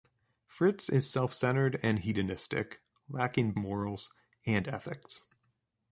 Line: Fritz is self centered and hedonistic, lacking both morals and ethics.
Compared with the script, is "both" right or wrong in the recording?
wrong